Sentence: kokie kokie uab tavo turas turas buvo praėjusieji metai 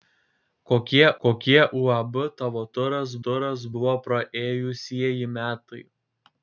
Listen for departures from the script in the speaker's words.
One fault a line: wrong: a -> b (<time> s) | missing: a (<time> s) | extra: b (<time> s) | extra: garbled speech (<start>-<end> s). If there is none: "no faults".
no faults